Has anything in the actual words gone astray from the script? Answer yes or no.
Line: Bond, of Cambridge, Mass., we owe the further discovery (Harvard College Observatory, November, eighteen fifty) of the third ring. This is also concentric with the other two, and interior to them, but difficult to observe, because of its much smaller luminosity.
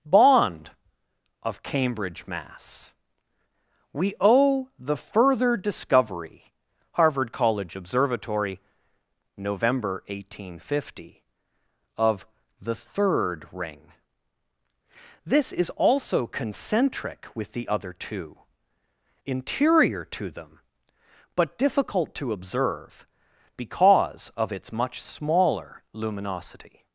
yes